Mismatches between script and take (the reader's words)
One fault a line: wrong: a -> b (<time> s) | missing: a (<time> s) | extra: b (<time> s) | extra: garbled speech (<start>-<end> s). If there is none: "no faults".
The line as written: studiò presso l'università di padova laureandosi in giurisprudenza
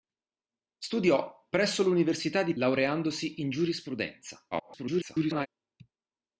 missing: padova (2.5 s)
extra: garbled speech (4.5-5.5 s)